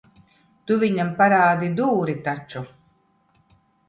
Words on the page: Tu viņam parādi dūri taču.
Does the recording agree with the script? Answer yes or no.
yes